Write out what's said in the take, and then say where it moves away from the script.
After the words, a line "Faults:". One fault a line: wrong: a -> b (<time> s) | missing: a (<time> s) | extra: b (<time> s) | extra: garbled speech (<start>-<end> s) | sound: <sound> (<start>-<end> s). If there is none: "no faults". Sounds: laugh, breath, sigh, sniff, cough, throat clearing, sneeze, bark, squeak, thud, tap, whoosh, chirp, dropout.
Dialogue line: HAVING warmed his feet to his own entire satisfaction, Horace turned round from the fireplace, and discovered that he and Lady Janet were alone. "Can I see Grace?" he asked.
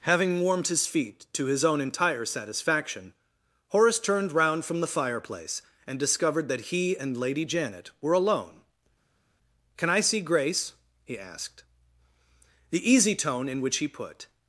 HAVING warmed his feet to his own entire satisfaction, Horace turned round from the fireplace, and discovered that he and Lady Janet were alone. "Can I see Grace?" he asked. The easy tone in which he put
Faults:
extra: The easy tone in which he put (12.7 s)